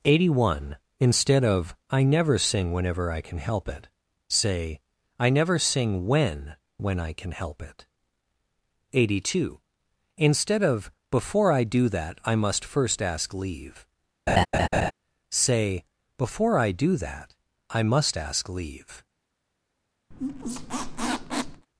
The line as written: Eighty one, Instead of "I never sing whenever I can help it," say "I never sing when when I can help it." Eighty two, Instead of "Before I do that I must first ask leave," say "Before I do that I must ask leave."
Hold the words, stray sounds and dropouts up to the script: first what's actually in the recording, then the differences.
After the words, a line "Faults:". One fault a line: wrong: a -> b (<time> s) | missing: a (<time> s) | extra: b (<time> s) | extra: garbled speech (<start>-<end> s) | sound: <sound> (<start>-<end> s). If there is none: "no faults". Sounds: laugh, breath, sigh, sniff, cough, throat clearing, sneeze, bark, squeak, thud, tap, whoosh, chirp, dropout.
Eighty one, Instead of "I never sing whenever I can help it," say "I never sing when when I can help it." Eighty two, Instead of "Before I do that I must first ask leave," say "Before I do that I must ask leave."
Faults:
sound: laugh (14.3-14.9 s)
sound: squeak (20.1-21.7 s)